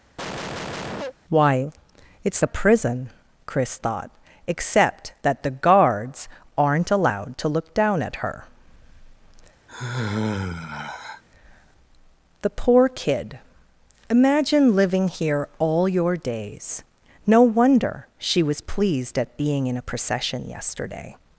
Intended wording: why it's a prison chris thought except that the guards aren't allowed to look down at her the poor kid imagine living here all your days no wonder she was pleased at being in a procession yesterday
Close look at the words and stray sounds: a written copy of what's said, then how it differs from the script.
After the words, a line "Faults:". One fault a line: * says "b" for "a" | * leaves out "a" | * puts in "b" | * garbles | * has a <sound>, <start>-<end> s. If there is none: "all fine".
why it's a prison chris thought except that the guards aren't allowed to look down at her the poor kid imagine living here all your days no wonder she was pleased at being in a procession yesterday
Faults:
* has a cough, 0.2-1.1 s
* has a sigh, 9.7-11.2 s